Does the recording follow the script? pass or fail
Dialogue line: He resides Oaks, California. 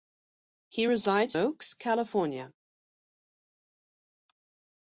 pass